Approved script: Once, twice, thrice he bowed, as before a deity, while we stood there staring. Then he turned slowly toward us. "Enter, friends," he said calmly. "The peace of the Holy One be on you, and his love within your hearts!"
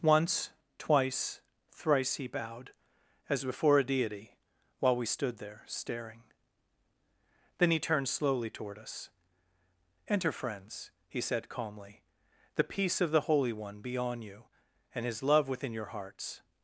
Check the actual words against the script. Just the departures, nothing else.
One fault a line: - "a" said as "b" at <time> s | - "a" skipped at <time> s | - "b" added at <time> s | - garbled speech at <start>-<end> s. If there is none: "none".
none